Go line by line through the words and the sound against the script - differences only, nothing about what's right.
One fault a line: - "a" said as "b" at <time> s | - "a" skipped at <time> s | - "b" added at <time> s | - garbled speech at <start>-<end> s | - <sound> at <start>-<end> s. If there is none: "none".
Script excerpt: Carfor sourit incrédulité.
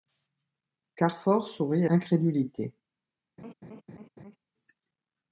- laugh at 3.4-4.4 s